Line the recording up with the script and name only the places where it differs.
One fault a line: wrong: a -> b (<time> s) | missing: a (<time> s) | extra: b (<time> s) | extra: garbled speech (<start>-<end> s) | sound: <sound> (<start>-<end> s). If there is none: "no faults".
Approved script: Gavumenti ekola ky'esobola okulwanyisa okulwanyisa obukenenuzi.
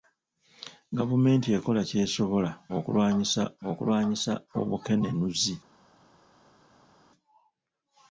no faults